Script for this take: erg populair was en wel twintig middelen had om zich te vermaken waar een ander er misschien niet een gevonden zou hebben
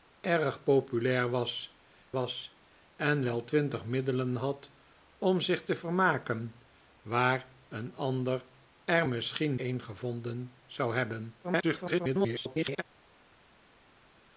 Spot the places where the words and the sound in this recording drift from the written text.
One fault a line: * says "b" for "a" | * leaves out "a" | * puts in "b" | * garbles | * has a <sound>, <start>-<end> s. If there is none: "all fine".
* puts in "was"
* leaves out "niet"
* garbles